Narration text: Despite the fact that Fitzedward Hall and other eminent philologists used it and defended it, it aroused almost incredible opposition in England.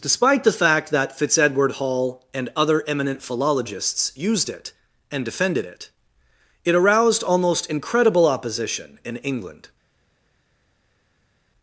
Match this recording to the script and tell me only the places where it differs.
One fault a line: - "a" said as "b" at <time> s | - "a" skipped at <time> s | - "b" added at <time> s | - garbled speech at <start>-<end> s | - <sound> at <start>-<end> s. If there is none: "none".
none